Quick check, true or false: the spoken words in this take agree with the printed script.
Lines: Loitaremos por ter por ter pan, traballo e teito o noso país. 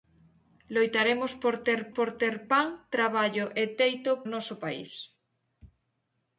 true